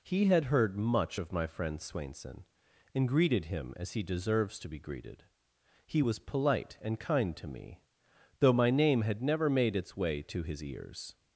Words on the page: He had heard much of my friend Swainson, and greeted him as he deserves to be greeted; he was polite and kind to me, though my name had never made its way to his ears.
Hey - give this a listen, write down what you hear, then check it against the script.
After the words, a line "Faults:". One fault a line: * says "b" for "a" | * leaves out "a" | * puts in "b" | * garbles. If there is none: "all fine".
He had heard much of my friend Swainson, and greeted him as he deserves to be greeted; he was polite and kind to me, though my name had never made its way to his ears.
Faults:
all fine